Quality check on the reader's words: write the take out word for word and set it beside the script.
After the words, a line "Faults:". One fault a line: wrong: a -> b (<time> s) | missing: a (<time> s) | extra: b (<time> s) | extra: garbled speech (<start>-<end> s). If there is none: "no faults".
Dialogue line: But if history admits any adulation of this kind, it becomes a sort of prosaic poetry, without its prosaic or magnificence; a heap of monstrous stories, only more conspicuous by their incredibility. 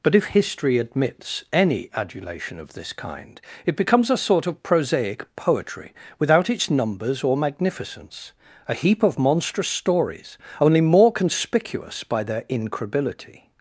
But if history admits any adulation of this kind, it becomes a sort of prosaic poetry, without its numbers or magnificence; a heap of monstrous stories, only more conspicuous by their incredibility.
Faults:
wrong: prosaic -> numbers (6.7 s)